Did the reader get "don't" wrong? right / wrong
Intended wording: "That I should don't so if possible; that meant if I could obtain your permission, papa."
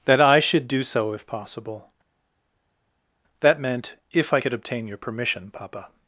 wrong